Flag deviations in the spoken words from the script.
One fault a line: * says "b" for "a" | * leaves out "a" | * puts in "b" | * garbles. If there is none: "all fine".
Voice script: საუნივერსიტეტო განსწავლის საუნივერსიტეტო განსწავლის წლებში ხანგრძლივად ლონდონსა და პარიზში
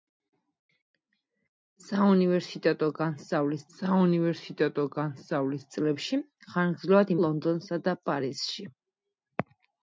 all fine